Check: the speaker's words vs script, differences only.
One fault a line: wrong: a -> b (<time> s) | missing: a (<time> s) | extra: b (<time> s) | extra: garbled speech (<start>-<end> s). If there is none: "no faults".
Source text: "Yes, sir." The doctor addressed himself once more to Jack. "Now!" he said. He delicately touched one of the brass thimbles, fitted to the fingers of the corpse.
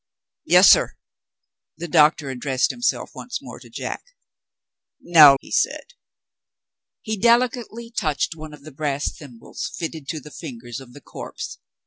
no faults